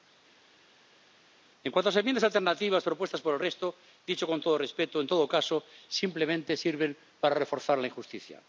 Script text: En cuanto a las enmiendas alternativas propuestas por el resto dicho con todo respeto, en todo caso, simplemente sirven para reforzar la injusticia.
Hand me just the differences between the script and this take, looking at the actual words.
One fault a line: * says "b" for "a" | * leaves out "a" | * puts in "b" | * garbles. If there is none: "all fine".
all fine